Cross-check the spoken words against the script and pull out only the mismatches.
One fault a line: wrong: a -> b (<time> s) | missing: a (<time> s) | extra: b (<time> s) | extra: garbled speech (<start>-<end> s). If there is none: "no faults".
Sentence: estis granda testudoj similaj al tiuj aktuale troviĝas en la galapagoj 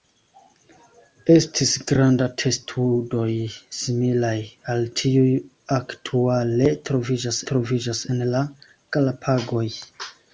extra: troviĝas (7.5 s)